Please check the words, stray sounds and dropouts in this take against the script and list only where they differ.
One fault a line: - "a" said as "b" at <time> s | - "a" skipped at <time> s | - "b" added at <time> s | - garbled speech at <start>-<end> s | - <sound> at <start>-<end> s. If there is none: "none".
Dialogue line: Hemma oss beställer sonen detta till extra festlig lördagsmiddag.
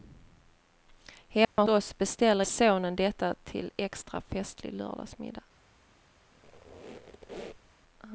- dropout at 1.4-1.6 s
- squeak at 6.3-7.7 s